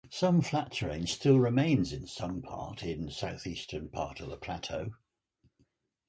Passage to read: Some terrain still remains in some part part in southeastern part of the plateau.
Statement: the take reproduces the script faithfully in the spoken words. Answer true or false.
false